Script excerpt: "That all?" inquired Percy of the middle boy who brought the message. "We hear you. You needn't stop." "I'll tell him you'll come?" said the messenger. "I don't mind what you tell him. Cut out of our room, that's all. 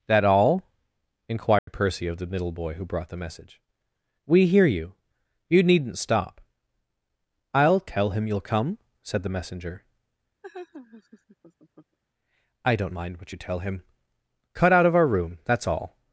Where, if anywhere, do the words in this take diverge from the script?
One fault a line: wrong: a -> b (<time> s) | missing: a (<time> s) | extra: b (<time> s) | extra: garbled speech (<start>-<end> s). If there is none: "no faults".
no faults